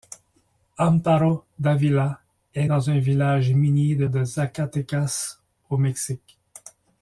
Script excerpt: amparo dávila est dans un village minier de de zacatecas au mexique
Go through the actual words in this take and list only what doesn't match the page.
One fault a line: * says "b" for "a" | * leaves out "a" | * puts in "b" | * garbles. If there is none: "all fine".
all fine